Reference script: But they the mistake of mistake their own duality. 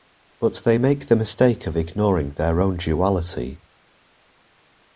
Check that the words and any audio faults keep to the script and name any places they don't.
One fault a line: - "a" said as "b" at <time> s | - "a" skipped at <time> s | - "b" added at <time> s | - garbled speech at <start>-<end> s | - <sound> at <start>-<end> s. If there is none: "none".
- "make" added at 0.8 s
- "mistake" said as "ignoring" at 1.8 s